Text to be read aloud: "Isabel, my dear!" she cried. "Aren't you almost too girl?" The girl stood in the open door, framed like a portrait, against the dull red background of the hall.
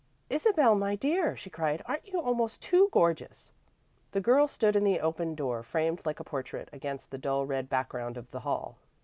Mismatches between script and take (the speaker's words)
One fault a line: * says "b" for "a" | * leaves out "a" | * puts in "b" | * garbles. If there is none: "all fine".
* says "gorgeous" for "girl"